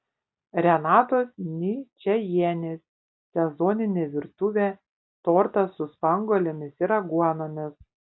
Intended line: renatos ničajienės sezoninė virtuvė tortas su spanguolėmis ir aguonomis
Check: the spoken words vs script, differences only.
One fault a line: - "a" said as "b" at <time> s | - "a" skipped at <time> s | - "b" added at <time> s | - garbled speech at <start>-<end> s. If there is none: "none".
none